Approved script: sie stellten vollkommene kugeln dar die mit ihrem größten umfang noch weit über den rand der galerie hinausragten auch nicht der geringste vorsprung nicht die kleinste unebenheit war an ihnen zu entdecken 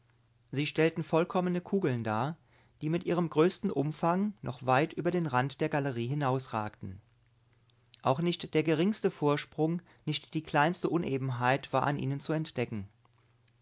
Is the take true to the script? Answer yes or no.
yes